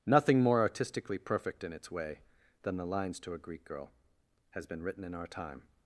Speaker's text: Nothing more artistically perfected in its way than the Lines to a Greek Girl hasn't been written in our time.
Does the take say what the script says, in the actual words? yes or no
no